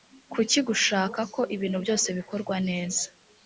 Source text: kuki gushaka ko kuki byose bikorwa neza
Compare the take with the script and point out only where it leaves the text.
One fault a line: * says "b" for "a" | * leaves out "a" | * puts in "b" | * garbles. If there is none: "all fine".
* says "ibintu" for "kuki"